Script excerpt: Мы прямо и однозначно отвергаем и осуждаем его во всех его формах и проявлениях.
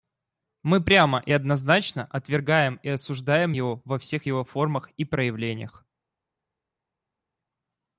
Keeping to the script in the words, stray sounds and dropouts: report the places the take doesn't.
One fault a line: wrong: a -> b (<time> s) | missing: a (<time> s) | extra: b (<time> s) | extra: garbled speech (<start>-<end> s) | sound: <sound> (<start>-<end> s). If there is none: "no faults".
no faults